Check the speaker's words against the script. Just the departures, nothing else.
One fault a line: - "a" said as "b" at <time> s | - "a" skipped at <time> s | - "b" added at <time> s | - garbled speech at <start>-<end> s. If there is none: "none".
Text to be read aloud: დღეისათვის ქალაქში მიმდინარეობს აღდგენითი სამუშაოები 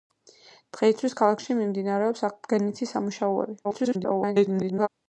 - garbled speech at 3.6-4.9 s